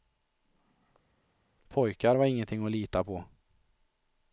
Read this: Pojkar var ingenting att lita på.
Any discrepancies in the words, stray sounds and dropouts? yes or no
no